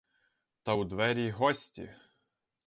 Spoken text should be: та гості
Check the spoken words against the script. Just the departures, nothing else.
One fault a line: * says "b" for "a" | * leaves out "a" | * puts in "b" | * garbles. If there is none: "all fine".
* puts in "у двері"